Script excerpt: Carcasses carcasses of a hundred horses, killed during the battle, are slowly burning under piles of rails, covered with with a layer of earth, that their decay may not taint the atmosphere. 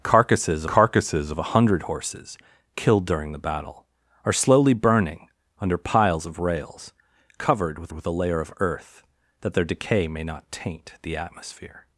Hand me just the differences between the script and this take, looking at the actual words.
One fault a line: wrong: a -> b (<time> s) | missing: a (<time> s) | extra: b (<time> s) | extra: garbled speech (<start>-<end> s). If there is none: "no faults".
no faults